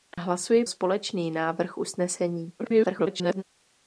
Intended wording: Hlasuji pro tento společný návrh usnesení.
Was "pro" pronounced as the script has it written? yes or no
no